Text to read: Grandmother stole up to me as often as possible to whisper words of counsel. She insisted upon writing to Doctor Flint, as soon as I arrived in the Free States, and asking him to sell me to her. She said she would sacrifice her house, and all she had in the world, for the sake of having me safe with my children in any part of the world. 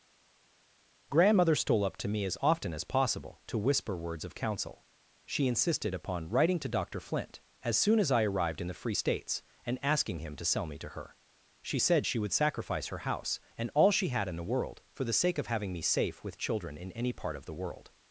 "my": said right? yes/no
no